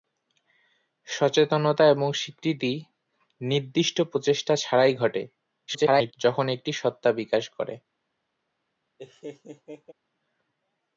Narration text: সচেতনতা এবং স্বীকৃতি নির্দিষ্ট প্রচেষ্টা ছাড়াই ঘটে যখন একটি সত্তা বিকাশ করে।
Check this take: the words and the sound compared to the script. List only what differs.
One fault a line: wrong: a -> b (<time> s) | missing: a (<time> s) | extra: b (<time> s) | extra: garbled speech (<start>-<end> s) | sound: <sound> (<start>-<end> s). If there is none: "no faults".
extra: garbled speech (5.7-6.1 s)
sound: laugh (9.0-9.9 s)